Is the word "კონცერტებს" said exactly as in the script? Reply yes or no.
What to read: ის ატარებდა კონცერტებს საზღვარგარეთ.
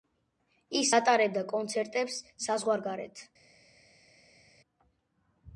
yes